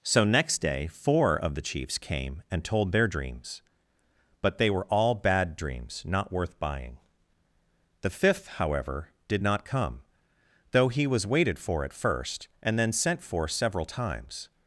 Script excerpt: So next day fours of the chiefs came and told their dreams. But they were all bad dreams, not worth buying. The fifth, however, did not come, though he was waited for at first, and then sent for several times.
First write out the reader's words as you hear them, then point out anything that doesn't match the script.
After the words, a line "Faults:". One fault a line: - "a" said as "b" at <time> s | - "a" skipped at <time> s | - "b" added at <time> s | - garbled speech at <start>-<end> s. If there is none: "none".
So next day four of the chiefs came and told their dreams. But they were all bad dreams, not worth buying. The fifth, however, did not come, though he was waited for at first, and then sent for several times.
Faults:
- "fours" said as "four" at 0.9 s